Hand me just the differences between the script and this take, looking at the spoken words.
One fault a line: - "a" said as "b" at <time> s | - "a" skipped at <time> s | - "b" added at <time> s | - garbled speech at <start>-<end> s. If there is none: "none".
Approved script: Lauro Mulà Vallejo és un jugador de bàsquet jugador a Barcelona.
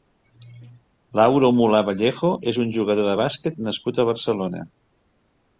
- "jugador" said as "nascut" at 3.7 s